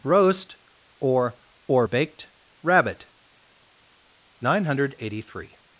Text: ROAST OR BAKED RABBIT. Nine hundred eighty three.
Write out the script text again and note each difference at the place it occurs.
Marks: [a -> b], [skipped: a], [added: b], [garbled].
ROAST OR [added: OR] BAKED RABBIT. Nine hundred eighty three.